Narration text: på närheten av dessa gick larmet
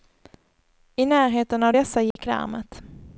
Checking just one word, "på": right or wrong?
wrong